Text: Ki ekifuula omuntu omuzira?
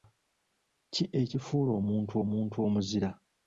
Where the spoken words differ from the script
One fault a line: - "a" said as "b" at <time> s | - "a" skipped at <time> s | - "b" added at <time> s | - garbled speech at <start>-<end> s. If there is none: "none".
- "omuntu" added at 2.2 s